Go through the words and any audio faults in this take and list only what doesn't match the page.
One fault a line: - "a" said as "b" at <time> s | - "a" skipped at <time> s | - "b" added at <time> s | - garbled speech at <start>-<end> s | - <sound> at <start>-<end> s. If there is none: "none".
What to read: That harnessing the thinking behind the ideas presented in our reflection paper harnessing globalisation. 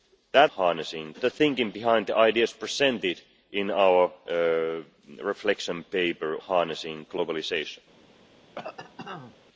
- cough at 8.5-9.4 s